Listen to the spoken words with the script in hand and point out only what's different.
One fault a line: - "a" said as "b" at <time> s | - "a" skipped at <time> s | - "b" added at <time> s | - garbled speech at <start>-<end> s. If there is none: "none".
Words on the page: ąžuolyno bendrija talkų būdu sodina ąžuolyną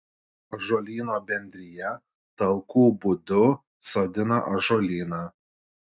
none